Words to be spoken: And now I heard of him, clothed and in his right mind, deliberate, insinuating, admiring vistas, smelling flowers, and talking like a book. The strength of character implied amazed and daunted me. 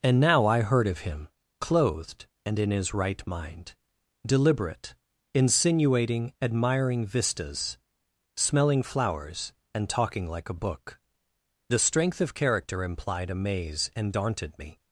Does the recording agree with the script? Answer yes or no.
no